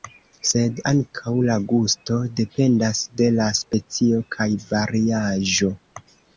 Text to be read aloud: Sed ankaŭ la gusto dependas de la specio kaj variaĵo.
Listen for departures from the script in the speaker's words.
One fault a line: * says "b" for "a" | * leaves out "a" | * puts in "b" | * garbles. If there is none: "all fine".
all fine